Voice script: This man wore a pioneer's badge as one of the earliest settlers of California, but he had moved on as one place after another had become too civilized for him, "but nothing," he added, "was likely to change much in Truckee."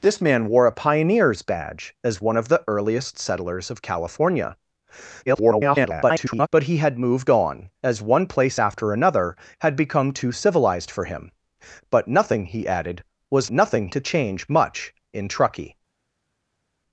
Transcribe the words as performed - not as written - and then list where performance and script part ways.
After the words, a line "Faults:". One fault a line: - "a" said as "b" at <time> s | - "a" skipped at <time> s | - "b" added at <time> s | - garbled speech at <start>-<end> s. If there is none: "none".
This man wore a pioneer's badge as one of the earliest settlers of California, [garbled] but he had moved on as one place after another had become too civilized for him, "but nothing," he added, "was nothing to change much in Truckee."
Faults:
- garbled speech at 5.3-6.5 s
- "likely" said as "nothing" at 13.5 s